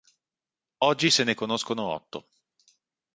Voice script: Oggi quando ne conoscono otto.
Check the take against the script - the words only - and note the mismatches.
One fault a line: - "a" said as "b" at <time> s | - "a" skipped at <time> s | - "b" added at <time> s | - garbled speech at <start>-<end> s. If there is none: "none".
- "quando" said as "se" at 1.1 s